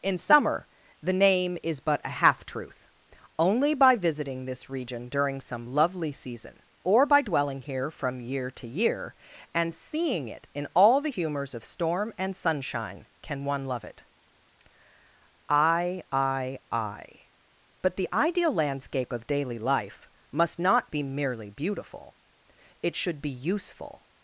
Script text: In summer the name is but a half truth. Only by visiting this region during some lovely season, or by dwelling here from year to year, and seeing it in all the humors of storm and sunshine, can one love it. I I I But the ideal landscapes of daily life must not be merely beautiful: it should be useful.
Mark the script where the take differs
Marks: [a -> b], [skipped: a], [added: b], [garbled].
In summer the name is but a half truth. Only by visiting this region during some lovely season, or by dwelling here from year to year, and seeing it in all the humors of storm and sunshine, can one love it. I I I But the ideal [landscapes -> landscape] of daily life must not be merely beautiful: it should be useful.